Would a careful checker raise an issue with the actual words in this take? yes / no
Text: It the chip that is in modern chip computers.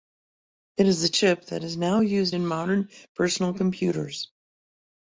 yes